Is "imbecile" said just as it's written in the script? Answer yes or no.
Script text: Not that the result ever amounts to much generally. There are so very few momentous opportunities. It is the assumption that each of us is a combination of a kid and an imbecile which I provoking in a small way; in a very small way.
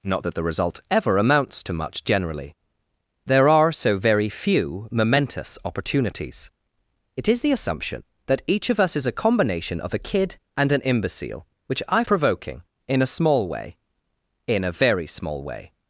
yes